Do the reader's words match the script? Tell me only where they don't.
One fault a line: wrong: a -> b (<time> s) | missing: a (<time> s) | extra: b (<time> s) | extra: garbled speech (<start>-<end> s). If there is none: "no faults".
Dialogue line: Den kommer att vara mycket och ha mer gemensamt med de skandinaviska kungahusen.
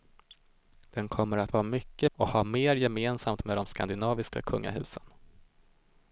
no faults